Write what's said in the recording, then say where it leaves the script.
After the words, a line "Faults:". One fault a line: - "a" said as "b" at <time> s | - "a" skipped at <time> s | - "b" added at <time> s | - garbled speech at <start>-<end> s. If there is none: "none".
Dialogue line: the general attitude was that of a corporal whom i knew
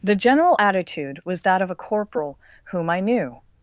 the general attitude was that of a corporal whom i knew
Faults:
none